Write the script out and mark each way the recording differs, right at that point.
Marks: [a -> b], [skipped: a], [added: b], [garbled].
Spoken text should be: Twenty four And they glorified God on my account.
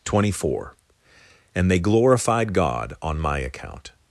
Twenty four And they glorified God on my account.